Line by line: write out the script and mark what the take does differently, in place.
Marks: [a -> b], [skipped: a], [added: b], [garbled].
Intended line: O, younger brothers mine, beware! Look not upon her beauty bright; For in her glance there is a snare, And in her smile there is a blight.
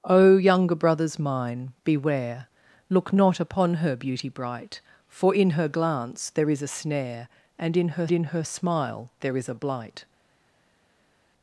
O, younger brothers mine, beware! Look not upon her beauty bright; For in her glance there is a snare, And in her [added: in her] smile there is a blight.